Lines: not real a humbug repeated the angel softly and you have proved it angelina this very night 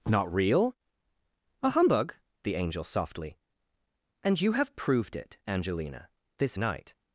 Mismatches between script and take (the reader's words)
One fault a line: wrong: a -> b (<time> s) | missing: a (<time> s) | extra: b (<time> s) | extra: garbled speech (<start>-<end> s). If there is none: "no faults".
missing: repeated (2.1 s)
missing: very (6.6 s)